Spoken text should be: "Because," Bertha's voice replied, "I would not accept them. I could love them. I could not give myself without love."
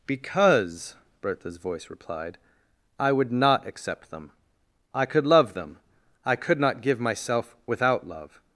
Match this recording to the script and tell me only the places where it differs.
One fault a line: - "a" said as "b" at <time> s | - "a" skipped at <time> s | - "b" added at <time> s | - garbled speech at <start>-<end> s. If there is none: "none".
none